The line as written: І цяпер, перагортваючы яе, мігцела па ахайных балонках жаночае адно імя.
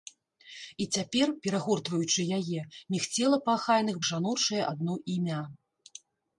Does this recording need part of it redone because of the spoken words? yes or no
yes